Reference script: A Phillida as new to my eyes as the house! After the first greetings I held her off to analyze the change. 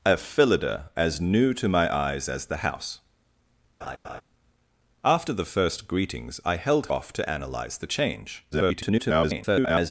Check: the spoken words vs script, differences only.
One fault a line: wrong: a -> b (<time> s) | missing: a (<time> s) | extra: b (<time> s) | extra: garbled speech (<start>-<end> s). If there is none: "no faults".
missing: her (6.9 s)
extra: garbled speech (8.5-9.9 s)